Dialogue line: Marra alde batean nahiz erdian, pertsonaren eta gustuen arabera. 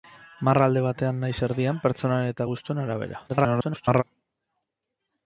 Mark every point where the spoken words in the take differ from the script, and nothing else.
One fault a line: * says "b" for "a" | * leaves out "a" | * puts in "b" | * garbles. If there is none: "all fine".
* garbles